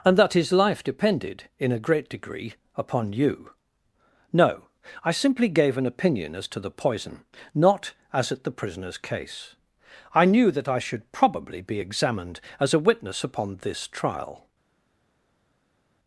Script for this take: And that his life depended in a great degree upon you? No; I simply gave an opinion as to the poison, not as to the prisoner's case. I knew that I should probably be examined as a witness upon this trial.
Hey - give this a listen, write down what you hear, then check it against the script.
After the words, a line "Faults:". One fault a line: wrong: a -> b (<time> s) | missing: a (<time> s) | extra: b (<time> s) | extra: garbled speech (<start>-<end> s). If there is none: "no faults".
And that his life depended in a great degree upon you? No; I simply gave an opinion as to the poison, not as at the prisoner's case. I knew that I should probably be examined as a witness upon this trial.
Faults:
wrong: to -> at (8.3 s)